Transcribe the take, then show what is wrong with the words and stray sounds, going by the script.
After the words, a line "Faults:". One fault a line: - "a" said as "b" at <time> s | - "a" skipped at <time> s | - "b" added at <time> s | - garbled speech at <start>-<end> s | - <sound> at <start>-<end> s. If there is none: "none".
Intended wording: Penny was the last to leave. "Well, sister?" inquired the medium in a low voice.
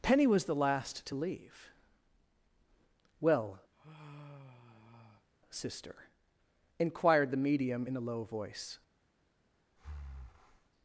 Penny was the last to leave. "Well, sister?" inquired the medium in a low voice.
Faults:
- sigh at 3.7-5.3 s
- breath at 9.8-10.7 s